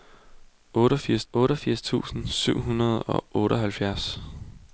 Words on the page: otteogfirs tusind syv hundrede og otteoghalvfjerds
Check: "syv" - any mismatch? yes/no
no